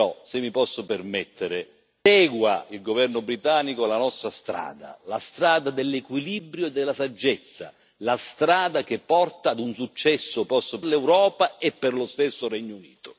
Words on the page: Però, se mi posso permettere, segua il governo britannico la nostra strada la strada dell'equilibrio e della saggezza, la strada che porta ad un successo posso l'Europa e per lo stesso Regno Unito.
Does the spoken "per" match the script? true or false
true